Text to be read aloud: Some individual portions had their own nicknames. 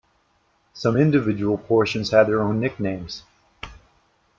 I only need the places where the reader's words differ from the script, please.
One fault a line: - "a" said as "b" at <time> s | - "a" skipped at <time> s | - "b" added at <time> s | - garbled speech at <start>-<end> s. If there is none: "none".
none